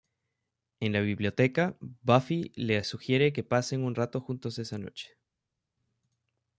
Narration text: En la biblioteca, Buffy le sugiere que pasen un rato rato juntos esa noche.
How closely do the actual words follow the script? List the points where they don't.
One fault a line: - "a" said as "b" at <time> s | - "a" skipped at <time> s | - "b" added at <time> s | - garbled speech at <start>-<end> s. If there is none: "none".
- "rato" skipped at 4.2 s